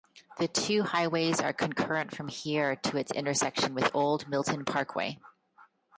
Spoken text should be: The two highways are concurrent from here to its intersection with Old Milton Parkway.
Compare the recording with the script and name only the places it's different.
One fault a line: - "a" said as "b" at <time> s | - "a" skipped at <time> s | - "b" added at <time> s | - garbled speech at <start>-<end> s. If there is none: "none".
none